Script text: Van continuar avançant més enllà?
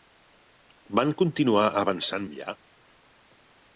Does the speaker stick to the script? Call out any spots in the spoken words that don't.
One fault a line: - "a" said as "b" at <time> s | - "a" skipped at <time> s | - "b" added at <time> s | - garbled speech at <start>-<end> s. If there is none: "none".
- "més" skipped at 2.3 s